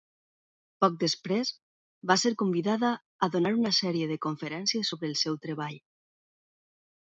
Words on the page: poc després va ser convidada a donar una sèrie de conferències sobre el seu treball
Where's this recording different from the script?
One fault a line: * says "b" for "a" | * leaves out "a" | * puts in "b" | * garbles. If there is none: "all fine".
all fine